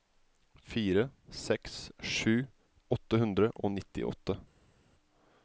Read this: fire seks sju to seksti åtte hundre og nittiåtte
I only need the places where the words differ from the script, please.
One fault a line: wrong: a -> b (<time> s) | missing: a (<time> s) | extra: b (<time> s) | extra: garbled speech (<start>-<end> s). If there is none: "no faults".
missing: to seksti (2.3 s)